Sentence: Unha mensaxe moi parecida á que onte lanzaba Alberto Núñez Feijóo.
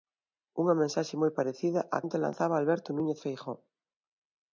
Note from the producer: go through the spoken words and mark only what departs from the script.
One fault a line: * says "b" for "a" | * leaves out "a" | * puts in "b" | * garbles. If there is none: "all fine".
* leaves out "que"